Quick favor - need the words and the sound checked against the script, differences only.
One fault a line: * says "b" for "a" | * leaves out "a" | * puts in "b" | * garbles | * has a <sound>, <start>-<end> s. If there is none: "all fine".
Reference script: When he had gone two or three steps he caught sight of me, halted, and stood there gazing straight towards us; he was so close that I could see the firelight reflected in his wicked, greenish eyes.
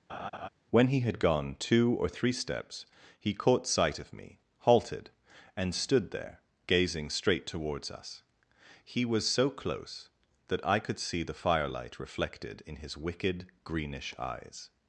* has a laugh, 0.1-0.5 s